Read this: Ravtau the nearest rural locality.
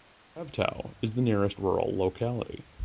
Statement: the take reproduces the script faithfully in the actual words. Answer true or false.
false